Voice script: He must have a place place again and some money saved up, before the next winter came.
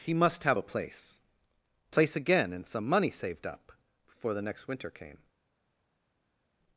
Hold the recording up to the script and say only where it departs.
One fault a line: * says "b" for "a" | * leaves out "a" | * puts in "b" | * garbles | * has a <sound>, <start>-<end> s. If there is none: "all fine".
all fine